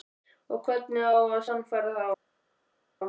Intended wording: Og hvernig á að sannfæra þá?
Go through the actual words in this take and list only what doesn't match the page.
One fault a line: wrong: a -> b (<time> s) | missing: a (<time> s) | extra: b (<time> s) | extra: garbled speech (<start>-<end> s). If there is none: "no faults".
no faults